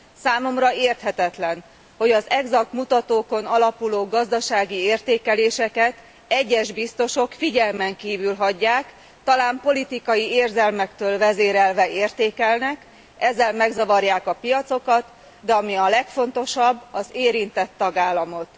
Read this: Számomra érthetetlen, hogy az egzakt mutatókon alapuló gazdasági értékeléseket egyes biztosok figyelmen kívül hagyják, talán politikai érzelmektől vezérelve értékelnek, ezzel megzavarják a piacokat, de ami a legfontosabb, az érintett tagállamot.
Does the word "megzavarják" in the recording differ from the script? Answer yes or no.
no